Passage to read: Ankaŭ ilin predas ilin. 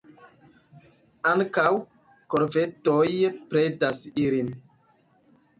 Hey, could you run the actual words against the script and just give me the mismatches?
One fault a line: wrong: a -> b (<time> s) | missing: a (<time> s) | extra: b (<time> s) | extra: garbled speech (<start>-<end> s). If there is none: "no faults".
wrong: ilin -> korvedoj (2.3 s)